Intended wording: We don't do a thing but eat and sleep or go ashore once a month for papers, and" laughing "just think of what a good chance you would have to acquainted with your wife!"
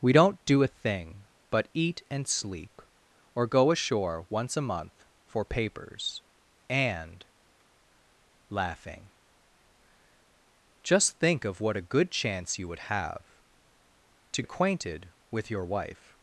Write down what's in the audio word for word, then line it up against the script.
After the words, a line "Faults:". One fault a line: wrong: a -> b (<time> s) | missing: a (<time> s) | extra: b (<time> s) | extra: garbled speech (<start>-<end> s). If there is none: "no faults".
We don't do a thing but eat and sleep or go ashore once a month for papers, and" laughing "just think of what a good chance you would have to acquainted with your wife!"
Faults:
no faults